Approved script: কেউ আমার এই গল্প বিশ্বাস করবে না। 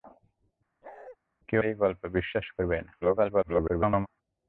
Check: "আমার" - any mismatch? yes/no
yes